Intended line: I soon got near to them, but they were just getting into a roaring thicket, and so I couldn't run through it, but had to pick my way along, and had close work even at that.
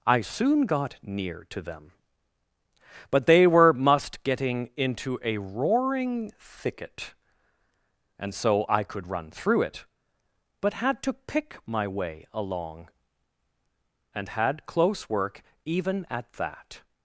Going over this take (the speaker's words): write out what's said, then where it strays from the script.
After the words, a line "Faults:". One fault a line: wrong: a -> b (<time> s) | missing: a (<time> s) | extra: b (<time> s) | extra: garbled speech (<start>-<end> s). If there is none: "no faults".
I soon got near to them, but they were must getting into a roaring thicket, and so I could run through it, but had to pick my way along, and had close work even at that.
Faults:
wrong: just -> must (3.7 s)
wrong: couldn't -> could (8.8 s)